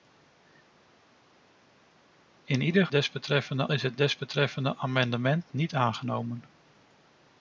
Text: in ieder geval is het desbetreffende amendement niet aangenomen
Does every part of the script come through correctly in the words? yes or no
no